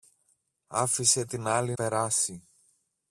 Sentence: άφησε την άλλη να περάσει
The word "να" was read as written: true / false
false